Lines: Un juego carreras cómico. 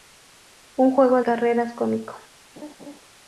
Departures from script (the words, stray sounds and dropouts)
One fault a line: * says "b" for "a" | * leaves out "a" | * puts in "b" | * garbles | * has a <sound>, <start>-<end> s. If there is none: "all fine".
* has a laugh, 2.6-3.0 s